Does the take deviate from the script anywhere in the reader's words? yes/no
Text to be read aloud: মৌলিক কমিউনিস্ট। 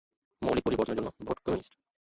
yes